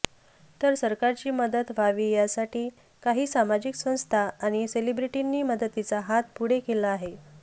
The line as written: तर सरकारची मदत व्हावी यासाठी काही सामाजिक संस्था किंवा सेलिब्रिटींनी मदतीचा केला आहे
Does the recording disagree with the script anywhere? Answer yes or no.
yes